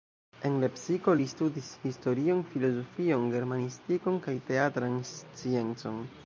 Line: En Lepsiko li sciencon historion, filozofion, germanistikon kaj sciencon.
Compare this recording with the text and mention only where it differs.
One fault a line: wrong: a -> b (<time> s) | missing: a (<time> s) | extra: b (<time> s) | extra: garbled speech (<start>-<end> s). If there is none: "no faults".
wrong: sciencon -> studis (1.3 s)
extra: teatran (4.5 s)